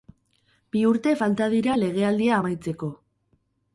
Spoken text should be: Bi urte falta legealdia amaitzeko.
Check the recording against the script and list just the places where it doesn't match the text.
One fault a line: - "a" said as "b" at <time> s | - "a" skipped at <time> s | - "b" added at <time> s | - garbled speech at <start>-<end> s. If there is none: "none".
- "dira" added at 1.6 s